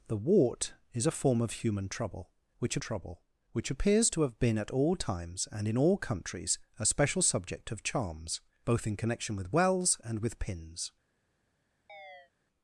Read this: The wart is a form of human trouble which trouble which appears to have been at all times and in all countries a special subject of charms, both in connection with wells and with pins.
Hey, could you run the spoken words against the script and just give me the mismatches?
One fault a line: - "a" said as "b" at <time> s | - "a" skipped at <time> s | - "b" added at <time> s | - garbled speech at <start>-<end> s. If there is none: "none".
none